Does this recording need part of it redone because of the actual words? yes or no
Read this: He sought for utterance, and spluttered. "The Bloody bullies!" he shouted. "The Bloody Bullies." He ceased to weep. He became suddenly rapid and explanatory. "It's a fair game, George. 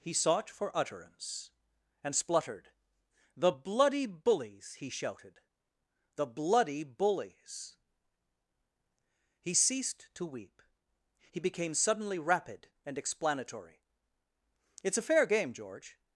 no